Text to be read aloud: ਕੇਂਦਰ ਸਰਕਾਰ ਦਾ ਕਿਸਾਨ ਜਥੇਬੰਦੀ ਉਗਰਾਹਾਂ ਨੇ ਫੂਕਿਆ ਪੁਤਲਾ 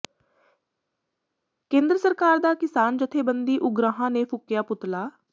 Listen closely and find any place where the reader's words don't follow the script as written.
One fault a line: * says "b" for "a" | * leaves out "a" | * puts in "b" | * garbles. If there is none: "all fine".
all fine